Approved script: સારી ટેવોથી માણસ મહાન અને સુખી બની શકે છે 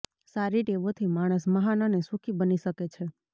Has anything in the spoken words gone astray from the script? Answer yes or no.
no